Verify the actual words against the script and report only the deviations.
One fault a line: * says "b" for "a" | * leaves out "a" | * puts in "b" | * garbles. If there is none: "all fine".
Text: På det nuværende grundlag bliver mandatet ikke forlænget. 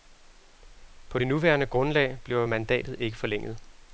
all fine